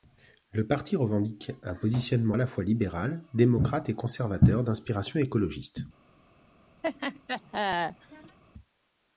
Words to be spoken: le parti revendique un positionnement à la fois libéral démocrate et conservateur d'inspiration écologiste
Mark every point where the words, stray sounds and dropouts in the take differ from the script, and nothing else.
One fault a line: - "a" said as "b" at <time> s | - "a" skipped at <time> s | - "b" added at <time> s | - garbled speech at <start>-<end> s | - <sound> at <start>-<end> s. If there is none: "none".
- laugh at 6.8-8.4 s